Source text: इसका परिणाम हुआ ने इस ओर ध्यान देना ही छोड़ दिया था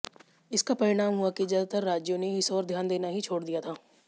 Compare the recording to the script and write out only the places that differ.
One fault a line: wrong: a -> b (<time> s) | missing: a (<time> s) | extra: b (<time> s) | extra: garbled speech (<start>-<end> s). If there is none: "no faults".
extra: कि ज्यादातर राज्यों (1.3 s)